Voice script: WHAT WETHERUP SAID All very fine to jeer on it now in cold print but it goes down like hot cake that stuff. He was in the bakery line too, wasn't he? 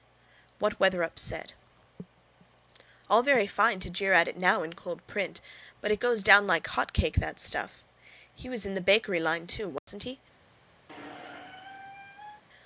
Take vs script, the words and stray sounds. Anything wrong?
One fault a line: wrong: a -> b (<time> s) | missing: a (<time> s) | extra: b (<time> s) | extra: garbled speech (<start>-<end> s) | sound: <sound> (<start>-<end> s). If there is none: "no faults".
wrong: on -> at (4.1 s)
sound: dropout (9.8-9.9 s)
sound: squeak (10.9-12.4 s)